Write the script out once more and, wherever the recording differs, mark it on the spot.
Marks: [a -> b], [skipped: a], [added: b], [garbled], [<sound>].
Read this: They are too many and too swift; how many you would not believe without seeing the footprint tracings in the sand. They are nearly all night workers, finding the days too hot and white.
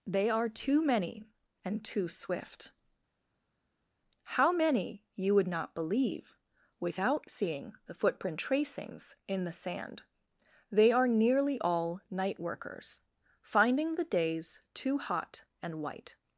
They are too many and too swift; how many you would not believe without seeing the footprint tracings in the sand. They are nearly all night workers, finding the days too hot and white.